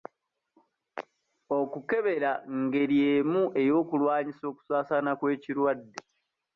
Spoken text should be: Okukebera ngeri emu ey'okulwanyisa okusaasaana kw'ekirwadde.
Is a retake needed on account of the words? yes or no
no